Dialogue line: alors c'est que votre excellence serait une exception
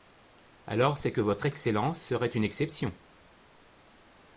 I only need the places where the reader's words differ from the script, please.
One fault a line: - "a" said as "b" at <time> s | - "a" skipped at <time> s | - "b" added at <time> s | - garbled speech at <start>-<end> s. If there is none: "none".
none